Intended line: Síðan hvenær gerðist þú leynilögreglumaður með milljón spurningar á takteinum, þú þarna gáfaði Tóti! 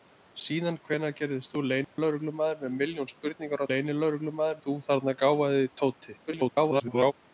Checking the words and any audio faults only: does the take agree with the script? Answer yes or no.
no